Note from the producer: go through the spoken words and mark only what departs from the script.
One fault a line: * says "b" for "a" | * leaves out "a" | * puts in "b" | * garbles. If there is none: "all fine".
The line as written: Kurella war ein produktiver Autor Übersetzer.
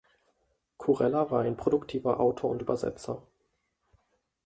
* puts in "und"